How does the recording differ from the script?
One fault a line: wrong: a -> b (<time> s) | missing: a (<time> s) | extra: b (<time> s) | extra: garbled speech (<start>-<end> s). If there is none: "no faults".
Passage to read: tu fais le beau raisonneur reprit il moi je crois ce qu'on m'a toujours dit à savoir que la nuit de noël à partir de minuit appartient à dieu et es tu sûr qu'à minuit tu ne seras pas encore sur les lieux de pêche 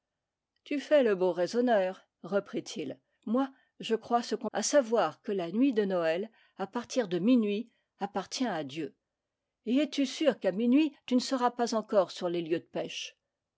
missing: m'a toujours dit (4.5 s)